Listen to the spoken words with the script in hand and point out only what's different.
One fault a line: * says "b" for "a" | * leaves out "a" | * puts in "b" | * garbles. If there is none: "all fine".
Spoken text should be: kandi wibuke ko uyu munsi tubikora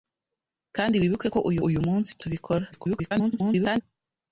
* puts in "uyu"
* garbles